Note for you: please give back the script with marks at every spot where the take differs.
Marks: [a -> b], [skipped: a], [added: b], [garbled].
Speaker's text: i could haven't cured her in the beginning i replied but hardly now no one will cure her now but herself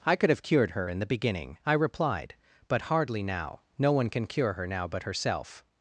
i could [haven't -> have] cured her in the beginning i replied but hardly now no one [will -> can] cure her now but herself